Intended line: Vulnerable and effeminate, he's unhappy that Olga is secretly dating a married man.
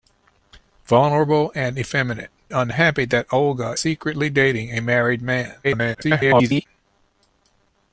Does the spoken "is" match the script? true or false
false